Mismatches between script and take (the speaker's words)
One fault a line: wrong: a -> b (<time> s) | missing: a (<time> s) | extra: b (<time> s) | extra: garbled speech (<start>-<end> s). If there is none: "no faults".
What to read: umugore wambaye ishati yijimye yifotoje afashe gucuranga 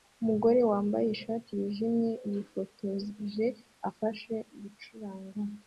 no faults